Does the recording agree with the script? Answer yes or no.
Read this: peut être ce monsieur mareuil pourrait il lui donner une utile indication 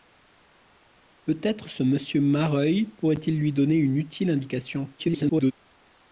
no